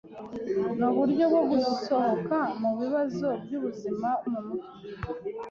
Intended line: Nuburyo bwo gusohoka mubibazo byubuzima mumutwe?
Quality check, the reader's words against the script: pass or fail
pass